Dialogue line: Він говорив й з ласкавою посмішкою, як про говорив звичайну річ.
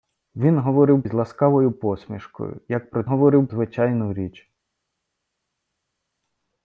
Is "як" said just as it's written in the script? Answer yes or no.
yes